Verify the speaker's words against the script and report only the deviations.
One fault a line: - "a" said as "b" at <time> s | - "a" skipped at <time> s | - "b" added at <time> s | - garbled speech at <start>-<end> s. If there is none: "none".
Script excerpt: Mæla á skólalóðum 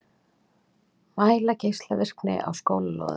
- "geislavirkni" added at 1.6 s